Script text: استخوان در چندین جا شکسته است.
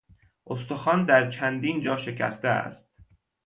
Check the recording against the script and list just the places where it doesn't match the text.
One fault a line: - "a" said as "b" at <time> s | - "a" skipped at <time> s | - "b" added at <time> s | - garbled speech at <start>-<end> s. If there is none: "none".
none